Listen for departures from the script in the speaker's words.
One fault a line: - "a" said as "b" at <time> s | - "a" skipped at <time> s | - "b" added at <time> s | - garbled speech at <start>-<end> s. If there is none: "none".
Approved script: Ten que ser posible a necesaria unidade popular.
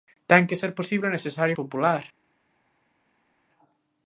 - "unidade" skipped at 1.6 s